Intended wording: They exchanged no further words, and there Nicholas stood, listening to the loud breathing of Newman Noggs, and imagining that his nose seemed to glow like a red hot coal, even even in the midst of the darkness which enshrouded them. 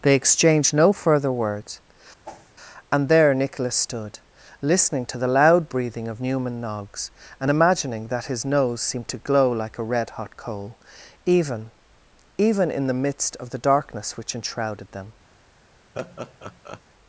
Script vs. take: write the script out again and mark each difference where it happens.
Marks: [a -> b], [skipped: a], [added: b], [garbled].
They exchanged no further words, and there Nicholas stood, listening to the loud breathing of Newman Noggs, and imagining that his nose seemed to glow like a red hot coal, even even in the midst of the darkness which enshrouded them.